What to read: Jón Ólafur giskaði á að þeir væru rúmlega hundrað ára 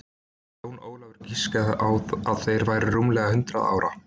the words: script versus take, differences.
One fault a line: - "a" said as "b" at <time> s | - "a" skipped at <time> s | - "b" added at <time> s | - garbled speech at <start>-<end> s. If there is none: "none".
none